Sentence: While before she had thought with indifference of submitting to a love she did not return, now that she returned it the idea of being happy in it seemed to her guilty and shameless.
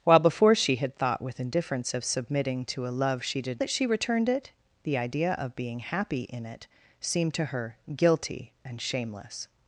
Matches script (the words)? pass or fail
fail